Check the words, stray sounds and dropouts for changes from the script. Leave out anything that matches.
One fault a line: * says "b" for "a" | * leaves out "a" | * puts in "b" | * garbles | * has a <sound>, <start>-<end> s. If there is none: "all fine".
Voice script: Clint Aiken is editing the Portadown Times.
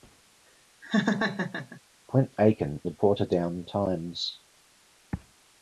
* has a laugh, 0.8-1.8 s
* leaves out "is editing"